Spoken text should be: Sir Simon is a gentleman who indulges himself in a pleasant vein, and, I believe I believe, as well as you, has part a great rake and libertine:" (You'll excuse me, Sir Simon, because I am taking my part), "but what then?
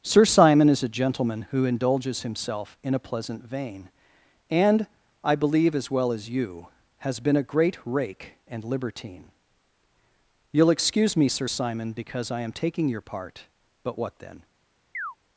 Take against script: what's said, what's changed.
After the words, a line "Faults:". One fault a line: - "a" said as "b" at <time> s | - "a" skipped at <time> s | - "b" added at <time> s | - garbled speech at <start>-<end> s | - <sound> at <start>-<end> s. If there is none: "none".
Sir Simon is a gentleman who indulges himself in a pleasant vein, and, I believe, as well as you, has been a great rake and libertine:" (You'll excuse me, Sir Simon, because I am taking your part), "but what then?
Faults:
- "I believe" skipped at 5.8 s
- "part" said as "been" at 7.2 s
- "my" said as "your" at 12.9 s
- chirp at 14.9-15.2 s